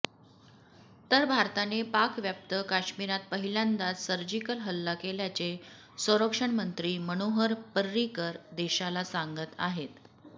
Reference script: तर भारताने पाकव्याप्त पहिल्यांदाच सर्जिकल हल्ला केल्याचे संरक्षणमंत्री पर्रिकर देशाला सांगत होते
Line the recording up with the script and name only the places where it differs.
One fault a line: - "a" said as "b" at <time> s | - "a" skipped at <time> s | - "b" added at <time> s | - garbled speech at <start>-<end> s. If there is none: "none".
- "काश्मिरात" added at 2.7 s
- "मनोहर" added at 7.1 s
- "होते" said as "आहेत" at 9.6 s